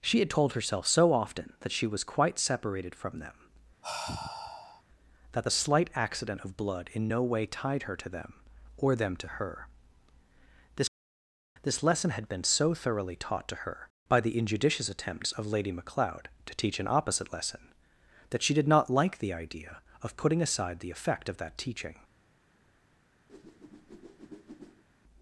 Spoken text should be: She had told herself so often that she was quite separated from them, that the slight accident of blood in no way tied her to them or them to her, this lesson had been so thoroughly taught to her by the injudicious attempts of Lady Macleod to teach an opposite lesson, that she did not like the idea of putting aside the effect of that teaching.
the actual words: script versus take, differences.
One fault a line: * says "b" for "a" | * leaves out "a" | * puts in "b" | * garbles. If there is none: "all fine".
* puts in "this"